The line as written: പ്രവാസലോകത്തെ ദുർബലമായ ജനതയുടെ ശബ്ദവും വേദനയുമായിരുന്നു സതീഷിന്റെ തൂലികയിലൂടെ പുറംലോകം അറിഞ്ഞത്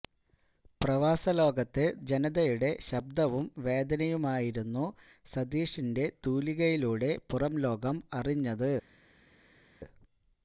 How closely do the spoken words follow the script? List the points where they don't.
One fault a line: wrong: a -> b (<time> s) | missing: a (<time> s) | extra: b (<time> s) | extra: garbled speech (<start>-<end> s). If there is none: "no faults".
missing: ദുർബലമായ (1.8 s)